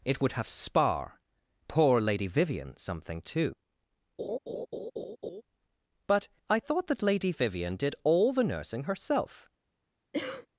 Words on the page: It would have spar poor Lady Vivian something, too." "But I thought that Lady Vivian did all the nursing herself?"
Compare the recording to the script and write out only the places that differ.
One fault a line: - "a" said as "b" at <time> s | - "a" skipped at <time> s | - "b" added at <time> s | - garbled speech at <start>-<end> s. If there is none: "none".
none